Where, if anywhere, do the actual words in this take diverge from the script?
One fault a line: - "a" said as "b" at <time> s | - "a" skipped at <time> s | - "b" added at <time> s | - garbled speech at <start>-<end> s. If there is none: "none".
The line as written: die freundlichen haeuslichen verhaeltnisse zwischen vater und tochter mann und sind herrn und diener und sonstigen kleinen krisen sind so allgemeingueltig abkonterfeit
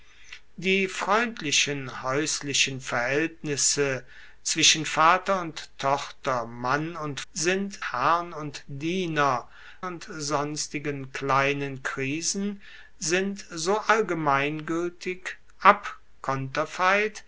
none